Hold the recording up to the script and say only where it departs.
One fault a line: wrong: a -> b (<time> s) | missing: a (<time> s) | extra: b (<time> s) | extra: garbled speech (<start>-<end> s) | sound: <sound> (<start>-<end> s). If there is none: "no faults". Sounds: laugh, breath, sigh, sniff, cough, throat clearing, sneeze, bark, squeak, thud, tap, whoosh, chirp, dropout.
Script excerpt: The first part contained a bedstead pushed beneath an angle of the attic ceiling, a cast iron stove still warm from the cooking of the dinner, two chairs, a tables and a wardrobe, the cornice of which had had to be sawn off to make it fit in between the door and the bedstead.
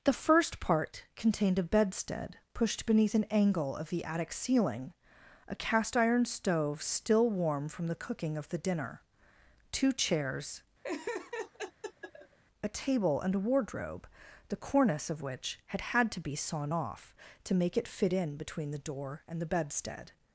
sound: laugh (10.8-12.4 s)
wrong: tables -> table (12.7 s)